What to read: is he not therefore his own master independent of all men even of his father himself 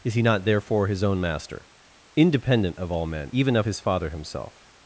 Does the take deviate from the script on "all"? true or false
false